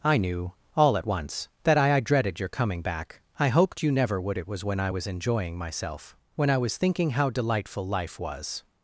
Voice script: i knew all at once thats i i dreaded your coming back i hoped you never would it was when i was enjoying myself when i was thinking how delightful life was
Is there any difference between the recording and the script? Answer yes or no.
yes